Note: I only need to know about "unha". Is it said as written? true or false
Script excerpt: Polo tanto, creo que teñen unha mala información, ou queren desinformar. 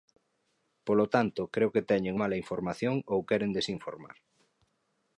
false